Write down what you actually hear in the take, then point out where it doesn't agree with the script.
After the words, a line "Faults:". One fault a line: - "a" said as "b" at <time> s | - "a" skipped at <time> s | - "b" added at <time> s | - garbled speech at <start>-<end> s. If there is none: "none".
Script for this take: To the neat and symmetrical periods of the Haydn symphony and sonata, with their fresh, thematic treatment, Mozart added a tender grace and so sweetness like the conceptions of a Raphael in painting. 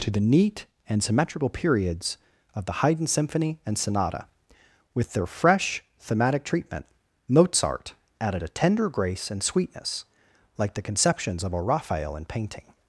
To the neat and symmetrical periods of the Haydn symphony and sonata, with their fresh, thematic treatment, Mozart added a tender grace and sweetness like the conceptions of a Raphael in painting.
Faults:
- "so" skipped at 9.4 s